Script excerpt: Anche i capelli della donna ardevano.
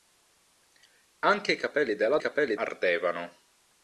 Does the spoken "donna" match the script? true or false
false